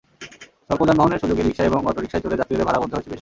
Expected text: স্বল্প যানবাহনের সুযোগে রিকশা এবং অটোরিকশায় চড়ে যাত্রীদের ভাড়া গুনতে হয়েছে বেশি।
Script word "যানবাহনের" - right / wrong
right